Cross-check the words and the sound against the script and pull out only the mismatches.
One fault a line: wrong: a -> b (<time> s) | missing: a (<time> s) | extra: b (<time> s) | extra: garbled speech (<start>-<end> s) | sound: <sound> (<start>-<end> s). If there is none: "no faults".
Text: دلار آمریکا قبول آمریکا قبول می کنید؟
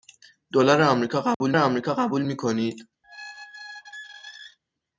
sound: dropout (1.3-1.4 s)
sound: squeak (3.0-4.6 s)